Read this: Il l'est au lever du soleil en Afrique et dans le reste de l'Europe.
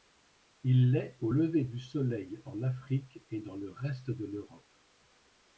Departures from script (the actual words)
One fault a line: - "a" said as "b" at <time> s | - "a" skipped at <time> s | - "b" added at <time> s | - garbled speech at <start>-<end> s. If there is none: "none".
none